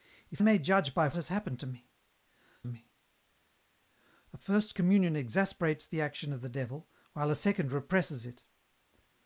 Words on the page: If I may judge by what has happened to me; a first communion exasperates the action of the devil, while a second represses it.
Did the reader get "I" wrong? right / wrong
wrong